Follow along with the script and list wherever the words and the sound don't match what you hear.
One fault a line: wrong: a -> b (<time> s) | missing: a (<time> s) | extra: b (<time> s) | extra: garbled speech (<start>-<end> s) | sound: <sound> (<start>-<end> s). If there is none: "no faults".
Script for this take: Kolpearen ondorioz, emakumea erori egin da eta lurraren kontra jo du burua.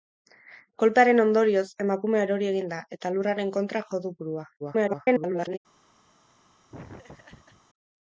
extra: garbled speech (4.6-5.6 s)
sound: laugh (6.7-7.6 s)